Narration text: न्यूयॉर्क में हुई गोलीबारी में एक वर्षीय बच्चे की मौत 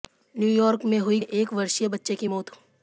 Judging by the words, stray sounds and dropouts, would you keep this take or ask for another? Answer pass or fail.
fail